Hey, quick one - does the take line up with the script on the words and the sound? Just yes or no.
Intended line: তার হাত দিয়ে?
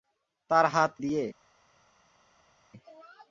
yes